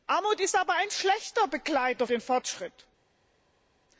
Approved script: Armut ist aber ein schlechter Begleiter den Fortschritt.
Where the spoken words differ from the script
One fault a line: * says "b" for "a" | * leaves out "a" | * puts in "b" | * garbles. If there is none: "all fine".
all fine